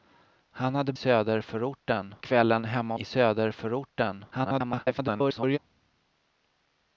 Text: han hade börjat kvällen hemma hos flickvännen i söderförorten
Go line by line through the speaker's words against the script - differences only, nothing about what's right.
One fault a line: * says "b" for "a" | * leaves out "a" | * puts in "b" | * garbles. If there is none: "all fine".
* says "söderförorten" for "börjat"
* leaves out "hos flickvännen"
* garbles